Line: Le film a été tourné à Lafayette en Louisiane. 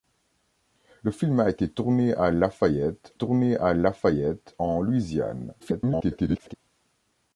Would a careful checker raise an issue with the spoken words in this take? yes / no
yes